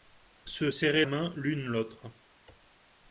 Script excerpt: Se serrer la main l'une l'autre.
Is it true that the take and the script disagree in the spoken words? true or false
true